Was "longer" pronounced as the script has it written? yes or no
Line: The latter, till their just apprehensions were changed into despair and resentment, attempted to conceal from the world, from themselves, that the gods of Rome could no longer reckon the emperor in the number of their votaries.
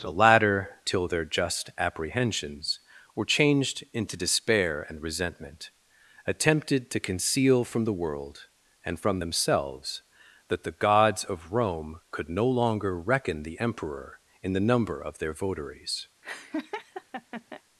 yes